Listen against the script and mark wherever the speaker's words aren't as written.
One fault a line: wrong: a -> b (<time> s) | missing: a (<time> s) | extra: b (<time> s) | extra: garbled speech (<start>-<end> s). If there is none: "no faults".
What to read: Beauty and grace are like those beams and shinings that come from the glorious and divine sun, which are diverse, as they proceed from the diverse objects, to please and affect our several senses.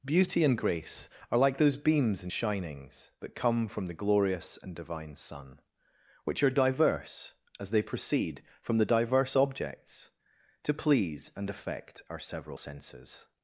no faults